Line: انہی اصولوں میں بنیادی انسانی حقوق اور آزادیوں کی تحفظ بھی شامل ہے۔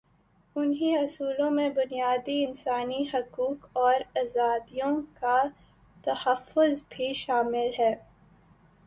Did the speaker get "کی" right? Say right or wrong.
wrong